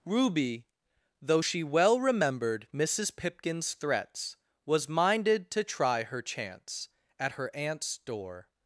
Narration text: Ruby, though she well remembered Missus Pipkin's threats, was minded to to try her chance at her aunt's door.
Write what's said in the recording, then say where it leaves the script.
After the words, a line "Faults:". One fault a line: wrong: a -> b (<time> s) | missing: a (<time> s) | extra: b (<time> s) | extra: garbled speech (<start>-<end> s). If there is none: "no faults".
Ruby, though she well remembered Missus Pipkin's threats, was minded to try her chance at her aunt's door.
Faults:
missing: to (5.6 s)